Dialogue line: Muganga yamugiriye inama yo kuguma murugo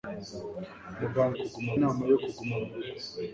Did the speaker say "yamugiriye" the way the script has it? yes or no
no